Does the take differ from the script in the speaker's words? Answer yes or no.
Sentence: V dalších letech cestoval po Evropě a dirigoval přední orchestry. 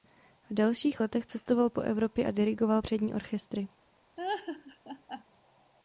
no